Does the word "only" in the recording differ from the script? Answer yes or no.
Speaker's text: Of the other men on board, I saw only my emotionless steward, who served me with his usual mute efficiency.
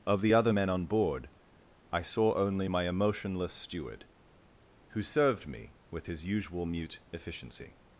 no